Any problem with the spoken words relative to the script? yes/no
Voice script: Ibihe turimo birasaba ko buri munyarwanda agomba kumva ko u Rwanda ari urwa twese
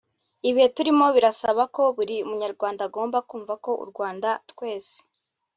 yes